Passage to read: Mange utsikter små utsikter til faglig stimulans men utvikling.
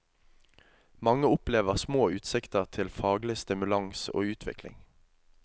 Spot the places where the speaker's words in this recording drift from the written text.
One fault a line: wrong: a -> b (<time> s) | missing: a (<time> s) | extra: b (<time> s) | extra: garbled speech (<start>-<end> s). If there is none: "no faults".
wrong: utsikter -> opplever (1.3 s)
wrong: men -> og (4.1 s)